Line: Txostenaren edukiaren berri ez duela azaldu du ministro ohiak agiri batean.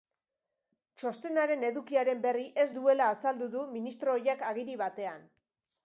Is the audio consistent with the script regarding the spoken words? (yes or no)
yes